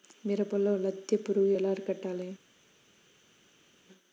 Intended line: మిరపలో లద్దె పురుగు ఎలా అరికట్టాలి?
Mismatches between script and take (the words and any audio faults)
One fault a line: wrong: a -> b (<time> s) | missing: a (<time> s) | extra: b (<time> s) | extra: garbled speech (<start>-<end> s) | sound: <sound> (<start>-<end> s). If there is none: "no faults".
no faults